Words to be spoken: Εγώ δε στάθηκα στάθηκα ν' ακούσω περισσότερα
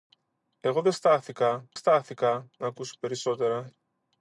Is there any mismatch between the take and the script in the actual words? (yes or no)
no